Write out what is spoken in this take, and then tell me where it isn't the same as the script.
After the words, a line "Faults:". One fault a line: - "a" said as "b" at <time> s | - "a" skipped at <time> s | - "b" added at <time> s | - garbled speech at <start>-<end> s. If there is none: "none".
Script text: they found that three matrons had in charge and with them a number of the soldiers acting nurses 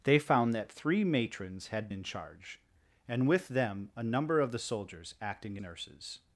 they found that three matrons had in charge and with them a number of the soldiers acting nurses
Faults:
none